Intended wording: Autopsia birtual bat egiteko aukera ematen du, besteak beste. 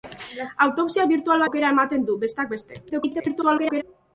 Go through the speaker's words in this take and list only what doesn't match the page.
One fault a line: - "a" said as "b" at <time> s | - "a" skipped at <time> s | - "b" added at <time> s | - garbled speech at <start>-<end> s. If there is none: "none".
- "bat egiteko" skipped at 1.4 s
- garbled speech at 2.9-3.8 s